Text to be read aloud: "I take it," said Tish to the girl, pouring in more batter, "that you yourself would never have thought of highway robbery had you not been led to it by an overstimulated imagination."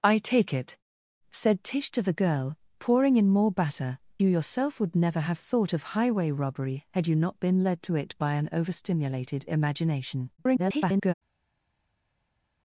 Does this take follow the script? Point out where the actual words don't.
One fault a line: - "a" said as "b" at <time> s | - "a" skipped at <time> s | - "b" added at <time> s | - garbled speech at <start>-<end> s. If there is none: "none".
- "that" skipped at 4.0 s
- garbled speech at 10.4-11.1 s